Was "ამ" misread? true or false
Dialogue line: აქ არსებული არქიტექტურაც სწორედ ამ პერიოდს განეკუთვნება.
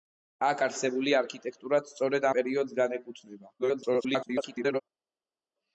true